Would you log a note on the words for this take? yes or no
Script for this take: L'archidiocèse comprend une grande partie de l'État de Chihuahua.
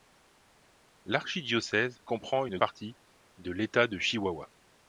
yes